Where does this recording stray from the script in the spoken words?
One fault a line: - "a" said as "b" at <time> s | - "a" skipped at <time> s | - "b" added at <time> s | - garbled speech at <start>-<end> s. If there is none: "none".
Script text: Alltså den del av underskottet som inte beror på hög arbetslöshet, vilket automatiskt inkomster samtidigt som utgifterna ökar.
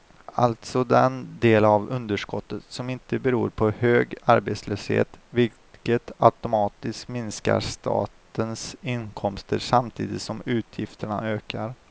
- "minskar statens" added at 7.1 s